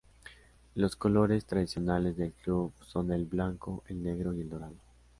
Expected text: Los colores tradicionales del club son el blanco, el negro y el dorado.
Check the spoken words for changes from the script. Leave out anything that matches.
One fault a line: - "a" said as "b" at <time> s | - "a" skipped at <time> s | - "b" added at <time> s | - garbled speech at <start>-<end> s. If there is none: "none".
none